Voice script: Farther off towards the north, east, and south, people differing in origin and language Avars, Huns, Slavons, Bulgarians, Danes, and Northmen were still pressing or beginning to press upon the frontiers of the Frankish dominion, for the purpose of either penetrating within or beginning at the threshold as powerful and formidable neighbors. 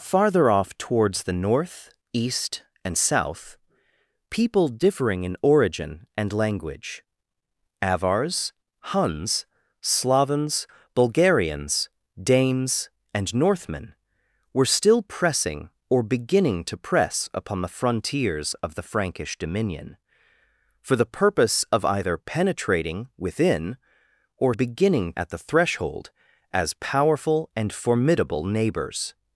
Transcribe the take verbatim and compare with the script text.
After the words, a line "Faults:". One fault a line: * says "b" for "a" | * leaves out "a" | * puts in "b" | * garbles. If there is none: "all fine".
Farther off towards the north, east, and south, people differing in origin and language Avars, Huns, Slavons, Bulgarians, Danes, and Northmen were still pressing or beginning to press upon the frontiers of the Frankish dominion, for the purpose of either penetrating within or beginning at the threshold as powerful and formidable neighbors.
Faults:
all fine